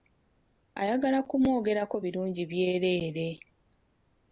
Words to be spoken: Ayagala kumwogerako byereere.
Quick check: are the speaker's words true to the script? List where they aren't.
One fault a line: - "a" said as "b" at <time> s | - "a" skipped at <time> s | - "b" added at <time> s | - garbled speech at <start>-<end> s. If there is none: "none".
- "birungi" added at 2.0 s